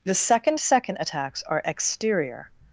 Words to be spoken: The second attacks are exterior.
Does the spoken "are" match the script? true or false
true